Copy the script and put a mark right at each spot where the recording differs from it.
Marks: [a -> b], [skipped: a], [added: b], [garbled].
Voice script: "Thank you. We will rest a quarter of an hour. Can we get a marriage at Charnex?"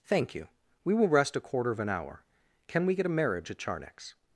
"Thank you. We will rest a quarter of an hour. Can we get a marriage at Charnex?"